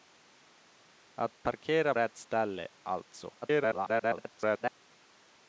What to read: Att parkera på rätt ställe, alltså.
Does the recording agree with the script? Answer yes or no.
no